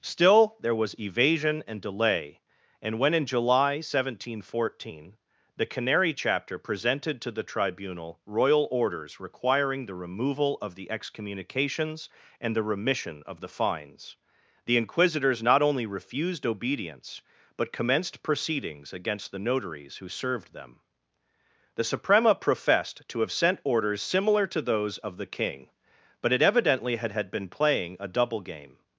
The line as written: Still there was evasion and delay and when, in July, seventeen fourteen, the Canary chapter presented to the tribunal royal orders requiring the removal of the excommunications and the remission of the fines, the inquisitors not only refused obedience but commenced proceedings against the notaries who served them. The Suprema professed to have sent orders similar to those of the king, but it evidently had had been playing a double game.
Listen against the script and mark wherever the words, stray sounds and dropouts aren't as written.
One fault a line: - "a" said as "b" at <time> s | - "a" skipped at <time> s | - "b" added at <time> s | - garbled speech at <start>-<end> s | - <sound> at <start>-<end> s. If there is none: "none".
none